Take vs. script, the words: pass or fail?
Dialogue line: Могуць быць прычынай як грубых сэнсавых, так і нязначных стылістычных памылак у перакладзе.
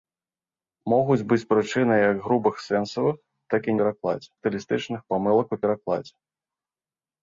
fail